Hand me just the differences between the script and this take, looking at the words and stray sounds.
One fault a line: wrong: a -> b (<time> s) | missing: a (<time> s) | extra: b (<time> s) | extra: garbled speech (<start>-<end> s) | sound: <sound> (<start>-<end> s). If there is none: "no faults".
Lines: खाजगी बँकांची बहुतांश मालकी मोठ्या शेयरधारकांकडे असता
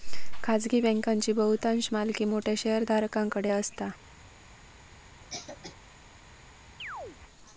sound: cough (5.2-5.7 s)
sound: chirp (6.8-7.2 s)